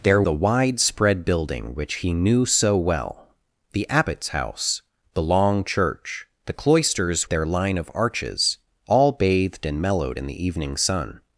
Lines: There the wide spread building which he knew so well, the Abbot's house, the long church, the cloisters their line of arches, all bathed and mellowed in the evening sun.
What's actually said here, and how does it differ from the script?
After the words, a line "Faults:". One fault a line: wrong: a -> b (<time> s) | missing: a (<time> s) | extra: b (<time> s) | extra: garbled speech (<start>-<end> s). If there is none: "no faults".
There the wide spread building which he knew so well, the Abbot's house, the long church, the cloisters their line of arches, all bathed and mellowed in the evening sun.
Faults:
no faults